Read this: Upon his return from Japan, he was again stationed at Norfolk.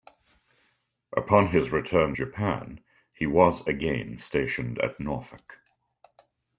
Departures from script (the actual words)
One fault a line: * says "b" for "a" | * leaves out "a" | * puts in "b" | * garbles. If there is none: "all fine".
* leaves out "from"